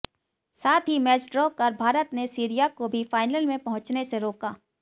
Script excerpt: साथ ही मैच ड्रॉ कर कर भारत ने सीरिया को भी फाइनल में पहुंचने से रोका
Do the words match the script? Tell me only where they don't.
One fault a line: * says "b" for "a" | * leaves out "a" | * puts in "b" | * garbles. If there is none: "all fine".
* leaves out "कर"